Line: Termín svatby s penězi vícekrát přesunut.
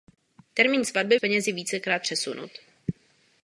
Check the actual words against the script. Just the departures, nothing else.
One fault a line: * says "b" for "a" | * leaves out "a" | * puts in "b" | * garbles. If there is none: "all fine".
all fine